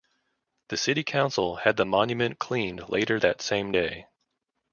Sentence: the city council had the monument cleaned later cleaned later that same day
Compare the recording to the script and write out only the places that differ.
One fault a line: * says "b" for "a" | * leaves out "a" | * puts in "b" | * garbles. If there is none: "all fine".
* leaves out "cleaned later"